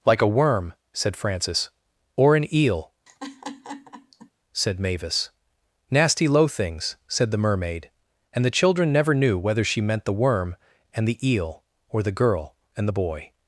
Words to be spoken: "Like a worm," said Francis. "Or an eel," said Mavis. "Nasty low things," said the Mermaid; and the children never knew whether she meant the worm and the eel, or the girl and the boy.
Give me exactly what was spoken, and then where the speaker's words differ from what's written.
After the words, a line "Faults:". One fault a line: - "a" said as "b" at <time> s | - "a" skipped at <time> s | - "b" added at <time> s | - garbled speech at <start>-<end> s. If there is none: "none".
"Like a worm," said Francis. "Or an eel," said Mavis. "Nasty low things," said the Mermaid; and the children never knew whether she meant the worm and the eel, or the girl and the boy.
Faults:
none